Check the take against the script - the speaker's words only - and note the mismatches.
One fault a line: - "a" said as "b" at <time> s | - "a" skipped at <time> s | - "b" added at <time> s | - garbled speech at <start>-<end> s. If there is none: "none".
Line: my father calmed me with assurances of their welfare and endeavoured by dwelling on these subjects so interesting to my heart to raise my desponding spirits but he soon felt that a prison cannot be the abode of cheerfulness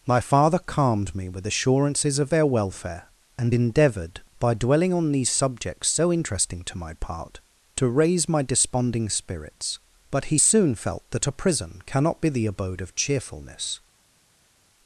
- "heart" said as "part" at 6.9 s